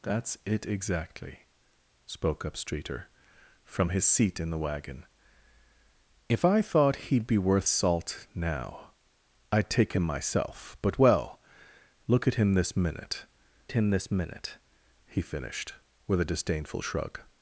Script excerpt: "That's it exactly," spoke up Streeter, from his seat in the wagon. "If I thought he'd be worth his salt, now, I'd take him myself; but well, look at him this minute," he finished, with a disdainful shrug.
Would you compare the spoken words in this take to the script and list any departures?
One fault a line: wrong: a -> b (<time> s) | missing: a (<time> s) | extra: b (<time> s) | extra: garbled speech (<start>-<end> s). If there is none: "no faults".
missing: his (7.7 s)
extra: him this minute (13.7 s)